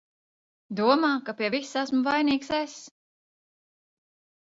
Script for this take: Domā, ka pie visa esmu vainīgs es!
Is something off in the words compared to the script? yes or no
no